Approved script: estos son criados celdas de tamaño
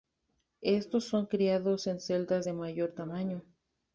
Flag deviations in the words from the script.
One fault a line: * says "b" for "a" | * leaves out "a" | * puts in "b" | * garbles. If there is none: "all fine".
* puts in "en"
* puts in "mayor"